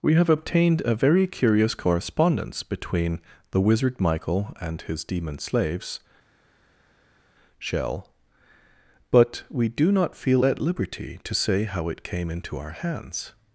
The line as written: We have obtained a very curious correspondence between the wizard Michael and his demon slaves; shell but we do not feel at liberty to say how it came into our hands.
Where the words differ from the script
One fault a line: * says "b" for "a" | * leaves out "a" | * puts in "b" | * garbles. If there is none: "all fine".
all fine